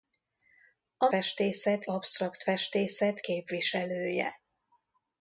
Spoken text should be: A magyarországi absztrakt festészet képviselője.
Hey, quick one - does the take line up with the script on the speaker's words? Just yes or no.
no